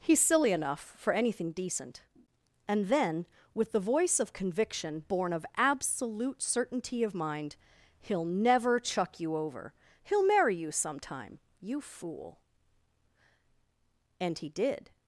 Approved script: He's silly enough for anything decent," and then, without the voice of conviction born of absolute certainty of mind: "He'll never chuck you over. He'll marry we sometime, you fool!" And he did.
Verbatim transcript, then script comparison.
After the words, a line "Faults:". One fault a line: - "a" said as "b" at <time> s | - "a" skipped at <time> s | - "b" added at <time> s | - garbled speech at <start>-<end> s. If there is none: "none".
He's silly enough for anything decent," and then, with the voice of conviction born of absolute certainty of mind: "He'll never chuck you over. He'll marry you sometime, you fool!" And he did.
Faults:
- "without" said as "with" at 3.5 s
- "we" said as "you" at 10.5 s